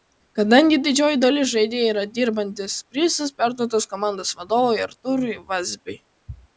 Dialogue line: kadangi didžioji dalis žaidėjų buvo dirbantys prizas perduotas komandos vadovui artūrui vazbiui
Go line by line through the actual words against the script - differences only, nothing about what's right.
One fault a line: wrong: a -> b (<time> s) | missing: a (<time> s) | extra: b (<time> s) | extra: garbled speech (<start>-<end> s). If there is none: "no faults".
wrong: buvo -> yra (1.9 s)